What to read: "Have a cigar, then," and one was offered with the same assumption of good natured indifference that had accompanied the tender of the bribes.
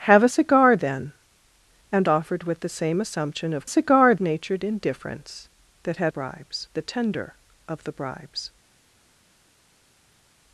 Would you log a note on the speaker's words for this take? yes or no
yes